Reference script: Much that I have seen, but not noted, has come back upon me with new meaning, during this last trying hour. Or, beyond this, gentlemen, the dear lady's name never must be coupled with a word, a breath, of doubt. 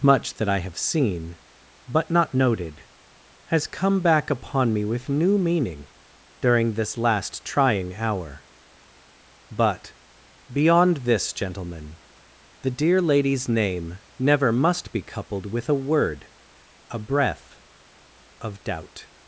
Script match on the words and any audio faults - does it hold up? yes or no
no